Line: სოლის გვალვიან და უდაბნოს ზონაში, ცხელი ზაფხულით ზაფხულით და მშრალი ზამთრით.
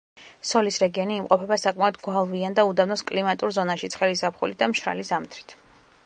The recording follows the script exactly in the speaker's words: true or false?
false